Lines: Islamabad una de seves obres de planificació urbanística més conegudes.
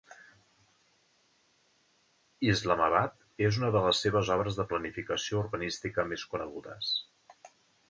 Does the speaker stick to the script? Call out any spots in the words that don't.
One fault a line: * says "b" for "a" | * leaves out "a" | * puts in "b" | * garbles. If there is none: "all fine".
* puts in "és"
* puts in "les"